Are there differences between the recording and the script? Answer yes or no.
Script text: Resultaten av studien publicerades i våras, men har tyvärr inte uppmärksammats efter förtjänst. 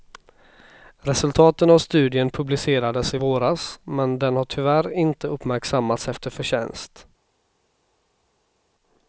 yes